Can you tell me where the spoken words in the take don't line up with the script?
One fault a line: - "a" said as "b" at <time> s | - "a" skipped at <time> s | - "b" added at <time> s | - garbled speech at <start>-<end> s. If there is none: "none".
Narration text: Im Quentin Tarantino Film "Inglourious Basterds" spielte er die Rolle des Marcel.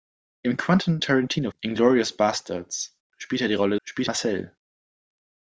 - "Film" skipped at 1.5 s
- "des" said as "spielte" at 3.8 s